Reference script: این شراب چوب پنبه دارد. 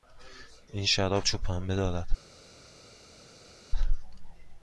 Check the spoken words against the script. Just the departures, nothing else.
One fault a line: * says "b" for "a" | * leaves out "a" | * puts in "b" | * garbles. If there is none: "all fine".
all fine